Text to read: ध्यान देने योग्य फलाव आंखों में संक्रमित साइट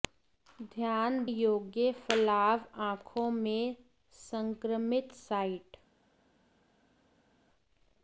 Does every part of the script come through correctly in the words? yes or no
no